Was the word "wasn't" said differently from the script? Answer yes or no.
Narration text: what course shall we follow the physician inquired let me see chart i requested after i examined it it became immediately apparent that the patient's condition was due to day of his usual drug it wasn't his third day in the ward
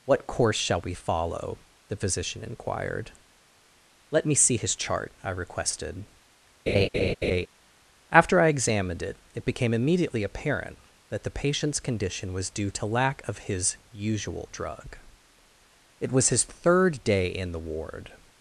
yes